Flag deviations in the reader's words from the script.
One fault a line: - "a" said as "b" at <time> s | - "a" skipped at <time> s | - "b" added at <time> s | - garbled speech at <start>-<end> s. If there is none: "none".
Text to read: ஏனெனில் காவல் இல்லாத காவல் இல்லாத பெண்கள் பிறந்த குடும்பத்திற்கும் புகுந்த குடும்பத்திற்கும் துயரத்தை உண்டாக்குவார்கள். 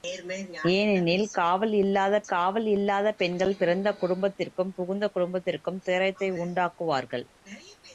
none